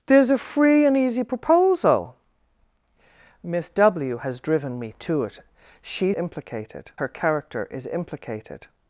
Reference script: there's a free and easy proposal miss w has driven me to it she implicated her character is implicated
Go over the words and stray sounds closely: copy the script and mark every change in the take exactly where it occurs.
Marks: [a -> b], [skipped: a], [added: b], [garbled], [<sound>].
there's a free and easy proposal miss w has driven me to it she implicated her character is implicated